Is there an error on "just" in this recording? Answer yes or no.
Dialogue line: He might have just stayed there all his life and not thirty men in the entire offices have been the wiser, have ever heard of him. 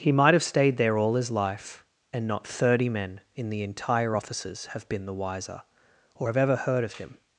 yes